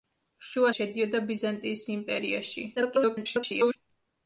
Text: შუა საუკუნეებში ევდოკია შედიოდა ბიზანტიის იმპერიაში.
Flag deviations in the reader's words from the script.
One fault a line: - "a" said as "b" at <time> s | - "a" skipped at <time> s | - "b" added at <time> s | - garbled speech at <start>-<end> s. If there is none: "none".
- "საუკუნეებში ევდოკია" skipped at 0.7 s
- garbled speech at 2.8-3.8 s